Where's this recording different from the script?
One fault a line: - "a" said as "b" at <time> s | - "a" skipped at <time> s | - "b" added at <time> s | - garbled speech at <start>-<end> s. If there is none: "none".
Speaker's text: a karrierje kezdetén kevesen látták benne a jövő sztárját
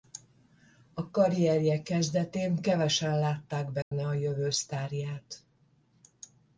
none